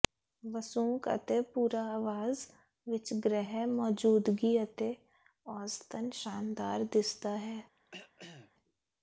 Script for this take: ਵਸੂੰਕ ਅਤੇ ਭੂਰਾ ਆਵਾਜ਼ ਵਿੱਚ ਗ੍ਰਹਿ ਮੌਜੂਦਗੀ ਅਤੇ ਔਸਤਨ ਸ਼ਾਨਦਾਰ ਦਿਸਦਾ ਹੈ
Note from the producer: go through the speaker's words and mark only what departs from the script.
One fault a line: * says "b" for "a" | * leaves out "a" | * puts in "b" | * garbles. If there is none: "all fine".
all fine